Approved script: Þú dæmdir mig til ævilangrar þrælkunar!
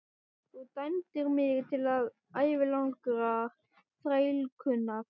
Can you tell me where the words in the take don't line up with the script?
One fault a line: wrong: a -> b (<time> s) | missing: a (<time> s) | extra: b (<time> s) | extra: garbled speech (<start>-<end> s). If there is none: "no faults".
no faults